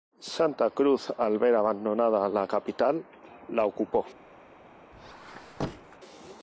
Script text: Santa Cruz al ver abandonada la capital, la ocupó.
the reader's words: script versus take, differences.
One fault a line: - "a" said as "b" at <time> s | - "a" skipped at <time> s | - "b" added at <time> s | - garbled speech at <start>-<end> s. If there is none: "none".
none